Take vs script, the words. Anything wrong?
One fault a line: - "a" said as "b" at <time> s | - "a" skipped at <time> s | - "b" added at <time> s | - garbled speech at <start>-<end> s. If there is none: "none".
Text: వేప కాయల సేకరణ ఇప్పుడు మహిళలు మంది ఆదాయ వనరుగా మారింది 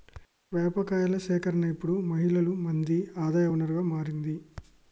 none